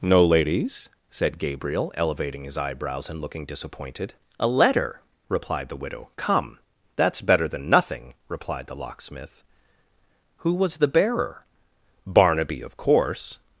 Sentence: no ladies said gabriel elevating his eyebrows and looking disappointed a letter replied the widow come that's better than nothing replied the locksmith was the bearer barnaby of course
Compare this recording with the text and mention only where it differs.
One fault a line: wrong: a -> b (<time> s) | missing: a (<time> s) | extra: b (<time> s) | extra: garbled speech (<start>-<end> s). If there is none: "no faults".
extra: who (10.4 s)